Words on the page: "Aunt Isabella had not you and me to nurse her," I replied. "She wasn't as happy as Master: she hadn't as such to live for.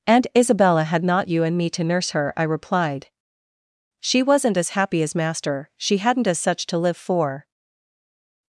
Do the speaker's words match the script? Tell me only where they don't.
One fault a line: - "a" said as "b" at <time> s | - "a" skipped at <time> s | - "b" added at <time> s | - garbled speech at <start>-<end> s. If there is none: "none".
none